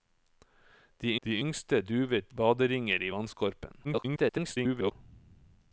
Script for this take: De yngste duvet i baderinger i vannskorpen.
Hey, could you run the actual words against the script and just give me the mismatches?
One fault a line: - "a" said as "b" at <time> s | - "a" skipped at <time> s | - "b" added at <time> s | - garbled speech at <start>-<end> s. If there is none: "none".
- "de" added at 1.2 s
- "i" skipped at 2.3 s
- garbled speech at 3.8-4.9 s